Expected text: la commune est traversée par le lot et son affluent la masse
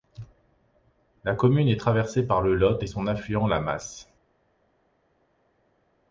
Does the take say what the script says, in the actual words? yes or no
yes